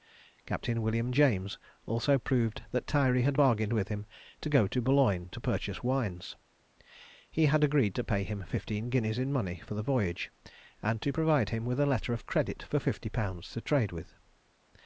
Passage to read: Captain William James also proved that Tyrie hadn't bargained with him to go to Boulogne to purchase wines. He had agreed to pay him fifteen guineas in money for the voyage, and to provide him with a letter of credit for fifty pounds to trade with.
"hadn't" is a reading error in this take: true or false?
true